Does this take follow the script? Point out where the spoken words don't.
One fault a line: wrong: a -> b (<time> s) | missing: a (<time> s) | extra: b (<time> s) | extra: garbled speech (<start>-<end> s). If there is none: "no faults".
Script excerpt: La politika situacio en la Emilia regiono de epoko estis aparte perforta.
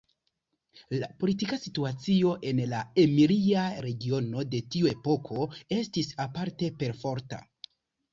extra: tiu (4.8 s)